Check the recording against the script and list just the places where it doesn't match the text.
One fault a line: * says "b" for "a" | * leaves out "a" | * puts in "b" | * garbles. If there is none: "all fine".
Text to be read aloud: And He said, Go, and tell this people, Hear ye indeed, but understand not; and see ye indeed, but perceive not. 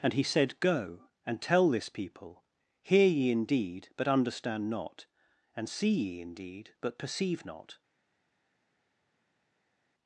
all fine